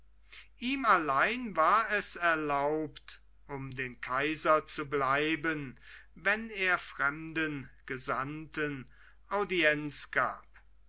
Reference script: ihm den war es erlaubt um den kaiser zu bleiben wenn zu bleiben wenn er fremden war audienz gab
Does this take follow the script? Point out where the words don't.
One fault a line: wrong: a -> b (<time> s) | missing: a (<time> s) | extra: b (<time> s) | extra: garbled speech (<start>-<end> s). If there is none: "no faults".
wrong: den -> allein (0.8 s)
missing: zu bleiben wenn (6.5 s)
wrong: war -> gesandten (7.9 s)